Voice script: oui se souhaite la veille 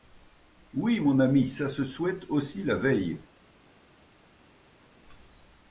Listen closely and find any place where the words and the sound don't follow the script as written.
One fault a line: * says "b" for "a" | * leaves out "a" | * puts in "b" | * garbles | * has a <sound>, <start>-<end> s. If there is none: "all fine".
* puts in "mon ami ça"
* puts in "aussi"